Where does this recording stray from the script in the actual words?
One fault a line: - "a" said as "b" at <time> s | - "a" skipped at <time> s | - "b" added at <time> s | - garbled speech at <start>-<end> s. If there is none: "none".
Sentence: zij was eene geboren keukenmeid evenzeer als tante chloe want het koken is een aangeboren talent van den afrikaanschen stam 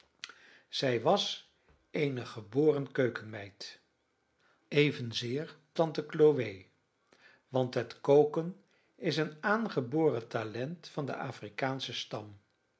- "als" skipped at 5.6 s